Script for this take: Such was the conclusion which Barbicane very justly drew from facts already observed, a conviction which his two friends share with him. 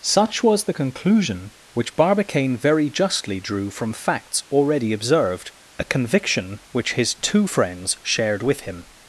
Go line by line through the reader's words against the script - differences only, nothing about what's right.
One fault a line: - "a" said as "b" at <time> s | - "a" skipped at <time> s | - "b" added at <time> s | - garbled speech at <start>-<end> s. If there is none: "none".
- "share" said as "shared" at 8.0 s